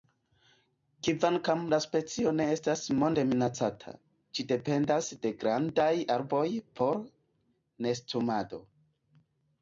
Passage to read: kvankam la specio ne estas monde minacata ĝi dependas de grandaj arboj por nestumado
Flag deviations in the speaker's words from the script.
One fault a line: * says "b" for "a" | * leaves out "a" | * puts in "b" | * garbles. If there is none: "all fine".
all fine